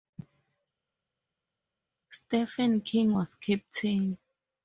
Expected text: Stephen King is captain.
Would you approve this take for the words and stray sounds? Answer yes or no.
no